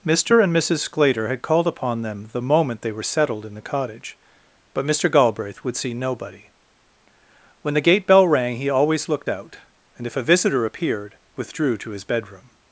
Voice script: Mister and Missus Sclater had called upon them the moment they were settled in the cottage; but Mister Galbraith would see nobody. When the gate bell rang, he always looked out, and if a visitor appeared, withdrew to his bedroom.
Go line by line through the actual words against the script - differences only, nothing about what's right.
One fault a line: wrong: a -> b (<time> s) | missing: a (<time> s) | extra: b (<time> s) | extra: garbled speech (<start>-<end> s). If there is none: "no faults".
no faults